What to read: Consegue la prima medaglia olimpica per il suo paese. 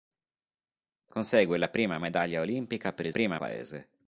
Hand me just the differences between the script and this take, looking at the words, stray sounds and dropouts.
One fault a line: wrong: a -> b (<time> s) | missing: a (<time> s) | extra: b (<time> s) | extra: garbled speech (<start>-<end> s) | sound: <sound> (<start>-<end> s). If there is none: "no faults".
wrong: suo -> prima (3.1 s)